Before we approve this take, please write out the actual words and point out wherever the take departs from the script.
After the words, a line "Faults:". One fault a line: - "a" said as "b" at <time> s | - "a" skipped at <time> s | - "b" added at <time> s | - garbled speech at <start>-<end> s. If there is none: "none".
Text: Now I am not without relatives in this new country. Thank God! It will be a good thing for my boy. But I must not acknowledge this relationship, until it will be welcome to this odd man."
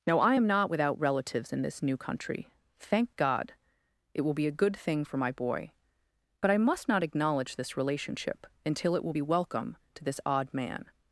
Now I am not without relatives in this new country. Thank God! It will be a good thing for my boy. But I must not acknowledge this relationship, until it will be welcome to this odd man."
Faults:
none